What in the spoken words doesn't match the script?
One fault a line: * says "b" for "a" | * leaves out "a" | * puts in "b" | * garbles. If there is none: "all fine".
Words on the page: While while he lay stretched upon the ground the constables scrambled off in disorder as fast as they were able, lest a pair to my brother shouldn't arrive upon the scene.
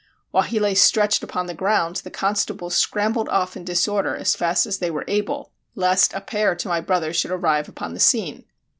* leaves out "while"
* says "should" for "shouldn't"